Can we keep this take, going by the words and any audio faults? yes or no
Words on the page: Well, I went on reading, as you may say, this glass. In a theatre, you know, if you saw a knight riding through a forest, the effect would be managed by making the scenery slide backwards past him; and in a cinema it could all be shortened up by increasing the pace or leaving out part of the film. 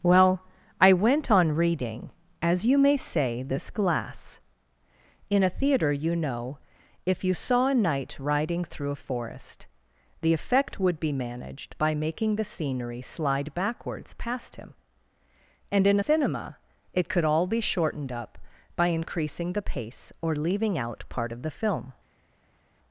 no